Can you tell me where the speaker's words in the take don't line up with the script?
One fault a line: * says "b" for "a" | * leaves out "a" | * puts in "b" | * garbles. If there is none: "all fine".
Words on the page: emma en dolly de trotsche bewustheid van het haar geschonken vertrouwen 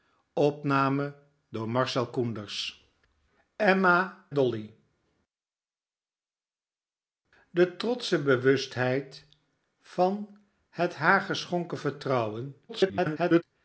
* leaves out "en"
* garbles